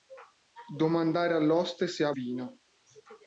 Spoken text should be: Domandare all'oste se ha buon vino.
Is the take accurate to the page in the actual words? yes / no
no